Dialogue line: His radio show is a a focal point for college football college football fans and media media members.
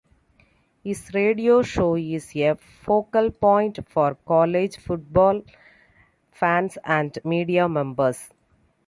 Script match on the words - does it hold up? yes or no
no